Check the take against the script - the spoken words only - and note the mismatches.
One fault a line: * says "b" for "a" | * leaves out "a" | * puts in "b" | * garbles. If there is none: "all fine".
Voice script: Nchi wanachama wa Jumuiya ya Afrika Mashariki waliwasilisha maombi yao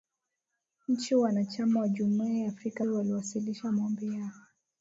* leaves out "Mashariki"